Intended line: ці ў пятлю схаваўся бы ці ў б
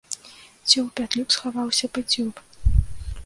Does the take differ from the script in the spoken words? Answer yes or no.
no